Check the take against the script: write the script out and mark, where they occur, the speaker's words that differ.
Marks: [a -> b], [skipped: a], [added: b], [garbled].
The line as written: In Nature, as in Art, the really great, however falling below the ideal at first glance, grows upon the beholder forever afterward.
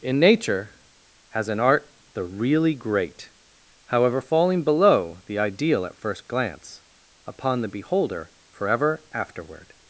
In Nature, as in Art, the really great, however falling below the ideal at first glance, [skipped: grows] upon the beholder forever afterward.